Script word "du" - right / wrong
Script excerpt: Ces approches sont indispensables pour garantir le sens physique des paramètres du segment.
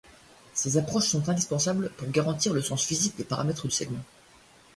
wrong